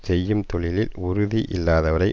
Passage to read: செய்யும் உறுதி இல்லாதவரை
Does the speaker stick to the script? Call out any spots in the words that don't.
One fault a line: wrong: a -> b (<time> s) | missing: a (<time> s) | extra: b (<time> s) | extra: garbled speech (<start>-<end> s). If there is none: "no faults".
extra: தொழிலில் (0.5 s)